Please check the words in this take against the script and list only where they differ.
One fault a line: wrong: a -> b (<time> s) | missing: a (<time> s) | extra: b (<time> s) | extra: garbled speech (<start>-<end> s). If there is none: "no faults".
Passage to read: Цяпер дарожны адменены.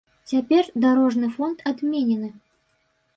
extra: фонд (1.4 s)